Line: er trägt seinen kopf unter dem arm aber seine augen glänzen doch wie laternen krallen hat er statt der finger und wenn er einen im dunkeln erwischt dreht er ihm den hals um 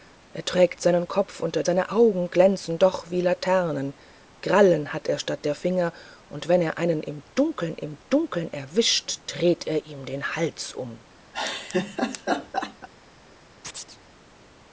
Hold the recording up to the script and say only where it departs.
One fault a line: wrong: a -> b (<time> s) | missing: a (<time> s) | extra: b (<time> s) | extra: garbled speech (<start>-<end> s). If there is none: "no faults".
missing: dem arm aber (1.6 s)
extra: im dunkeln (7.8 s)